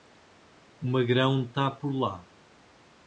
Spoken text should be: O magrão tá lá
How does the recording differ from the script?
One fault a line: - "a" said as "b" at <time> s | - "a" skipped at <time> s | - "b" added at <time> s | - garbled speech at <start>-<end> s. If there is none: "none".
- "por" added at 1.7 s